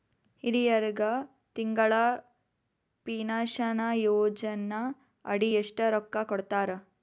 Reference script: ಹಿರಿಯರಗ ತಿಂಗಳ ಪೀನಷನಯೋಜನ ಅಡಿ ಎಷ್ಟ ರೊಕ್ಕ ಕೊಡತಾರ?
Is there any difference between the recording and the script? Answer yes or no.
no